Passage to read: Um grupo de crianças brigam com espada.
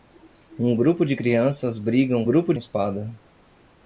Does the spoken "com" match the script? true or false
false